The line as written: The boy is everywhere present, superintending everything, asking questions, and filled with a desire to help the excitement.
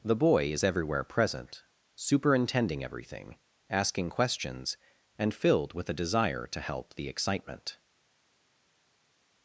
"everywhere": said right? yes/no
yes